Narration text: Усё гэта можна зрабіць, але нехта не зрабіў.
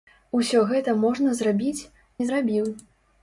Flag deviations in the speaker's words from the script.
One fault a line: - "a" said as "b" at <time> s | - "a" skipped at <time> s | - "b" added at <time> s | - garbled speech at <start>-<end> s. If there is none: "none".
- "але нехта" skipped at 1.9 s